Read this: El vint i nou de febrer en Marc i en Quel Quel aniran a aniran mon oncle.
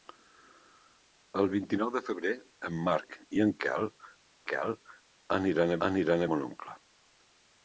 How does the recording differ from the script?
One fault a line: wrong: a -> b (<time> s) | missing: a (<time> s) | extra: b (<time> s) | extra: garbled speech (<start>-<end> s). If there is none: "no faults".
no faults